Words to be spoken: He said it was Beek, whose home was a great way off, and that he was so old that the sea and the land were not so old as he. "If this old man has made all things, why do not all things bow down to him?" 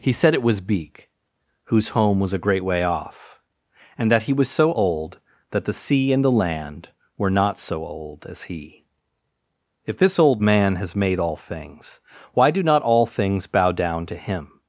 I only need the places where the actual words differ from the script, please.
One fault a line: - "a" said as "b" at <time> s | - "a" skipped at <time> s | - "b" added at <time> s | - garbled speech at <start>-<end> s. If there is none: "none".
none